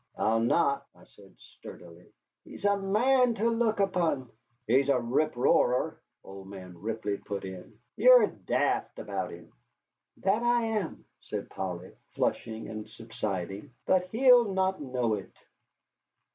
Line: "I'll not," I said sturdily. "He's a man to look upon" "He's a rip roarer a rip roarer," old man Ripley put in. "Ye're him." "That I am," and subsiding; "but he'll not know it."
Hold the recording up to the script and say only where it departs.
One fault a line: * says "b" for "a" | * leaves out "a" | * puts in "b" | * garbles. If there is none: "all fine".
* leaves out "a rip roarer"
* puts in "daft about"
* puts in "said Polly flushing"